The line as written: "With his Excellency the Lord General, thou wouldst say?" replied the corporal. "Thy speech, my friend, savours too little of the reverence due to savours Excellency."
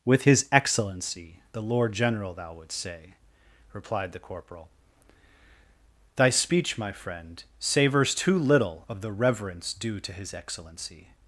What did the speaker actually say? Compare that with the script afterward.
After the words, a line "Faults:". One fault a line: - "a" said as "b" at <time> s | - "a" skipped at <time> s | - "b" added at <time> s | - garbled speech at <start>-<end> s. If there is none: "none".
"With his Excellency the Lord General, thou wouldst say?" replied the corporal. "Thy speech, my friend, savours too little of the reverence due to his Excellency."
Faults:
- "savours" said as "his" at 10.1 s